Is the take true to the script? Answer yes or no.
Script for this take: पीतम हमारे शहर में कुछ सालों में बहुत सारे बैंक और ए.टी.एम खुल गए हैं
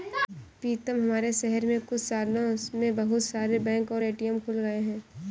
yes